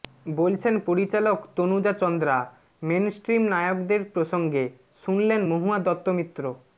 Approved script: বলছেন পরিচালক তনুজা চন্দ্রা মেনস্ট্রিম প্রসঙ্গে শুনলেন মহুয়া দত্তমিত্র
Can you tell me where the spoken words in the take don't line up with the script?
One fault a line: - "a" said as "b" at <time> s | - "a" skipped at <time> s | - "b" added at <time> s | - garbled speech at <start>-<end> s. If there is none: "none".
- "নায়কদের" added at 3.5 s